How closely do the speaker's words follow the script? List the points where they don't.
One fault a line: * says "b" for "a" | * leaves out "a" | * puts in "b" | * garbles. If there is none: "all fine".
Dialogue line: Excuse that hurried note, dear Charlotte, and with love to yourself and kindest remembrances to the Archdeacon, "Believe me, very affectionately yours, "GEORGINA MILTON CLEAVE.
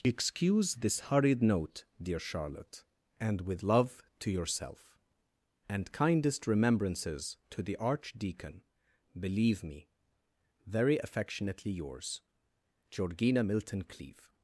* says "this" for "that"